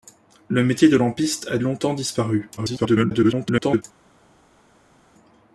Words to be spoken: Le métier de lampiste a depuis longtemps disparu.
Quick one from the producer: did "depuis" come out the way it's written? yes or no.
no